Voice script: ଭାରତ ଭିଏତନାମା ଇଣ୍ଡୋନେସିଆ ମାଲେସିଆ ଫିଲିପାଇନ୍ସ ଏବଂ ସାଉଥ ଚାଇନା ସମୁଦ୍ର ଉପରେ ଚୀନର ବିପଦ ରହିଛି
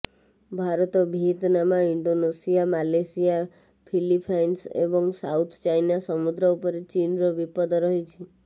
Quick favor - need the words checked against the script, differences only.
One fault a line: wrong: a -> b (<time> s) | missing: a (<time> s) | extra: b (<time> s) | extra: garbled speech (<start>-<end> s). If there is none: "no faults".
no faults